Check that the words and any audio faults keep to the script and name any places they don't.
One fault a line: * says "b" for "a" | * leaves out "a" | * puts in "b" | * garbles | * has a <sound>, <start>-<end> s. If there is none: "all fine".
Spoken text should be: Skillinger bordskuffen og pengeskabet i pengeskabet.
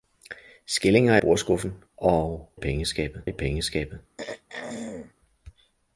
* has a throat clearing, 4.2-5.1 s